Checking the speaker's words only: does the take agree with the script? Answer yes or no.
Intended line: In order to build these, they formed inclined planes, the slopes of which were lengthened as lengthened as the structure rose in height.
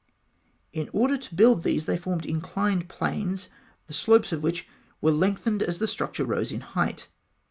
no